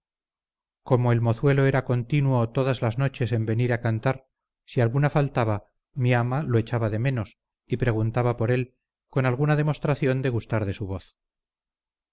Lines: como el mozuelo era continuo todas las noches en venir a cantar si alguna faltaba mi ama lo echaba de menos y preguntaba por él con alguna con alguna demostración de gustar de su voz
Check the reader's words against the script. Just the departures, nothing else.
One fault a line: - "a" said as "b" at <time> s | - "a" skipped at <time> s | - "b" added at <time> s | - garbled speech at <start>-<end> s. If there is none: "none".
- "con alguna" skipped at 9.6 s